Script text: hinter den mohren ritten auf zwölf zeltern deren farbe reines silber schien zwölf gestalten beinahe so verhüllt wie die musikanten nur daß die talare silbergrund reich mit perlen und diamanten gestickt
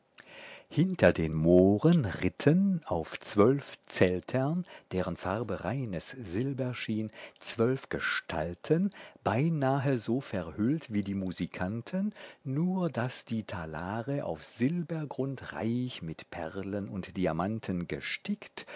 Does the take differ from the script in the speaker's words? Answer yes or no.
yes